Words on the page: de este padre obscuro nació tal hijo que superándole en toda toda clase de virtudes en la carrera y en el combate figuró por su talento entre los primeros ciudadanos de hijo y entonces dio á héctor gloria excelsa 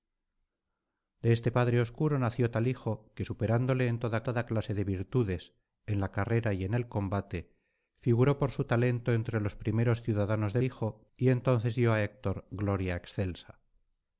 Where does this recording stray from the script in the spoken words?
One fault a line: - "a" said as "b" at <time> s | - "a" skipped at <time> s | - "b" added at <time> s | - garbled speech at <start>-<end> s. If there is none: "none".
none